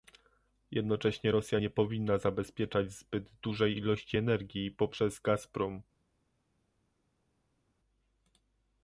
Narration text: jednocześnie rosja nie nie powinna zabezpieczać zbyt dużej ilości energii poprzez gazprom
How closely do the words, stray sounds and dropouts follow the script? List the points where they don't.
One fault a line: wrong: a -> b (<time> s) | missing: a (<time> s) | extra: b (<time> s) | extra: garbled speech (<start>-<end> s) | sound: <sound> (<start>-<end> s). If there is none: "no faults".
missing: nie (1.7 s)